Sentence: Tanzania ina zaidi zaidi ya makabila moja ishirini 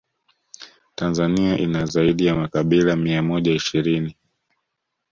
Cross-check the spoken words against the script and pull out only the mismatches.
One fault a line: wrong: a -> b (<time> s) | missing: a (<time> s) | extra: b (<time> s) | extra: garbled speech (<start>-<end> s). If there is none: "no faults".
missing: zaidi (2.2 s)
extra: mia (3.0 s)